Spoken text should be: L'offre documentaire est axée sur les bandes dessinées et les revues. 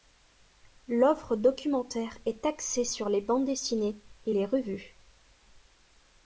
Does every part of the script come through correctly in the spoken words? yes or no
yes